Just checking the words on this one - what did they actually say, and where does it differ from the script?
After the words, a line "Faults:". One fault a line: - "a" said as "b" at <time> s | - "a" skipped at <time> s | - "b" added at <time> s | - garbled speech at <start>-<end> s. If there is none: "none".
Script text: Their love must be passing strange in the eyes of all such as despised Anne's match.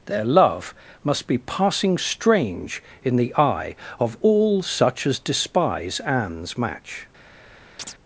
Their love must be passing strange in the eye of all such as despise Anne's match.
Faults:
- "eyes" said as "eye" at 3.4 s
- "despised" said as "despise" at 5.2 s